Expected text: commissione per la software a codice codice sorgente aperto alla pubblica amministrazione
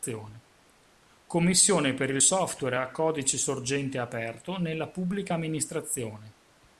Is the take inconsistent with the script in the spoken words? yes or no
yes